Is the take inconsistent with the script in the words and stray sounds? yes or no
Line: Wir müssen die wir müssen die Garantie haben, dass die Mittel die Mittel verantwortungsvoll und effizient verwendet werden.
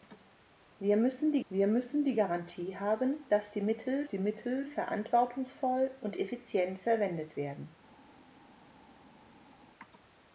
no